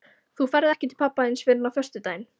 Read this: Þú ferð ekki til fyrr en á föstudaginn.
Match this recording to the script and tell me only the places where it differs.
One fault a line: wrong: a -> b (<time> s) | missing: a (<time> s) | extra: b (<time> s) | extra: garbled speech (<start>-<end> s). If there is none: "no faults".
extra: pabba þíns (1.0 s)